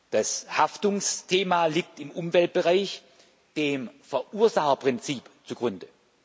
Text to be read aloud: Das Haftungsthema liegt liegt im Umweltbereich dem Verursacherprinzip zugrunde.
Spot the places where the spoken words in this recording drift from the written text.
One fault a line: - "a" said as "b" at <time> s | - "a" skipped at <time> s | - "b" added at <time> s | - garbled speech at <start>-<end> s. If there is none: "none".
- "liegt" skipped at 2.0 s